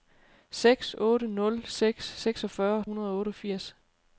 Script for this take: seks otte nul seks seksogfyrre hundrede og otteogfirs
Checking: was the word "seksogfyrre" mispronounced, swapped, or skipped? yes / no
no